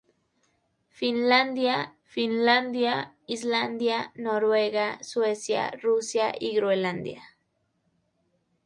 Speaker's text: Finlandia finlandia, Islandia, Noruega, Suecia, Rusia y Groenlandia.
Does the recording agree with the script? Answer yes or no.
yes